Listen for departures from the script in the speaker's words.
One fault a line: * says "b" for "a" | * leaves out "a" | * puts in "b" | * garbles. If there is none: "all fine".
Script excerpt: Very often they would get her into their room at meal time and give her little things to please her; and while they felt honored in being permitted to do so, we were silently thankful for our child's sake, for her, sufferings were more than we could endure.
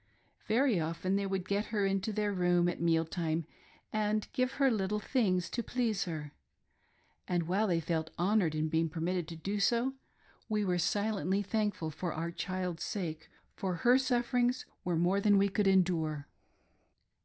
all fine